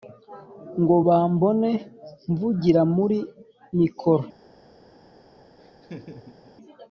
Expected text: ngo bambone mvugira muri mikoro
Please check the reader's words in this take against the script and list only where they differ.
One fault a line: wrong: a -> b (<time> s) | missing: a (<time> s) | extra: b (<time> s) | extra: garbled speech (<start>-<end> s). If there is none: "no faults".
no faults